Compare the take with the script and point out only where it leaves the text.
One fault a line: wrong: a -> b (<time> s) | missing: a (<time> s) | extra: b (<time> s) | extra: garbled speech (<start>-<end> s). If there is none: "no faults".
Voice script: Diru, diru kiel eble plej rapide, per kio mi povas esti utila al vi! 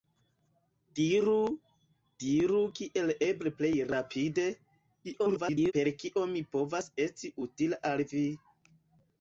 extra: garbled speech (5.0-5.7 s)